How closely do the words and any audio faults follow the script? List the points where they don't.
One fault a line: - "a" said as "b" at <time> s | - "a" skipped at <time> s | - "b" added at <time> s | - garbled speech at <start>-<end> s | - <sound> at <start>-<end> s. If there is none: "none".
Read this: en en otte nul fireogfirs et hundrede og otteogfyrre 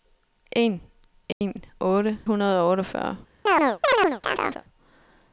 - dropout at 1.3-1.4 s
- "nul fireogfirs et" skipped at 2.2 s
- chirp at 3.5-4.6 s